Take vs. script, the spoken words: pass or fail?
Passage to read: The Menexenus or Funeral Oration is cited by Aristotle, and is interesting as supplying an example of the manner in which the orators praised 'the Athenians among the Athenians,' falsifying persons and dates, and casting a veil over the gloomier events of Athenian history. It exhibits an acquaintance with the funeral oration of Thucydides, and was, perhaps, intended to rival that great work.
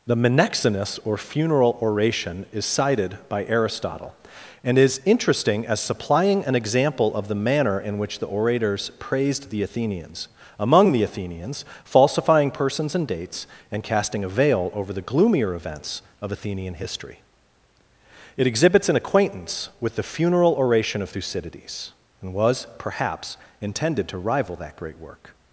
pass